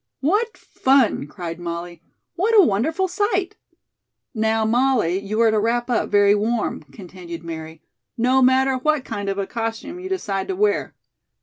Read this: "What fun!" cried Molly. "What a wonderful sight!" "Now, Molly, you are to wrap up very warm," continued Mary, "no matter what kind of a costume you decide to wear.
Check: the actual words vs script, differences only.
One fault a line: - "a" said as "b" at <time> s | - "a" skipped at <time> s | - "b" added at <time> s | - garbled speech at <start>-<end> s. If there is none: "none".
none